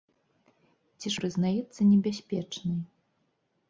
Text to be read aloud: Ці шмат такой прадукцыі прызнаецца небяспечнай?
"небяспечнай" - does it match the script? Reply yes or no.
yes